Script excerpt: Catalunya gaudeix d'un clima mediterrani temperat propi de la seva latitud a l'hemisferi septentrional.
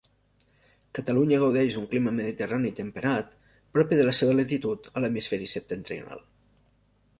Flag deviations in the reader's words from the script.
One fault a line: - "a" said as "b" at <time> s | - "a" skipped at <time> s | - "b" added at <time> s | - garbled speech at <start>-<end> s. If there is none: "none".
none